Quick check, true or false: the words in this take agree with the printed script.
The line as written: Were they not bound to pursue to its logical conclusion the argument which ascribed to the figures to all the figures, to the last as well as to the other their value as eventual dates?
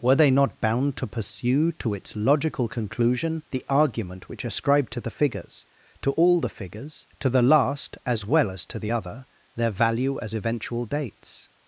true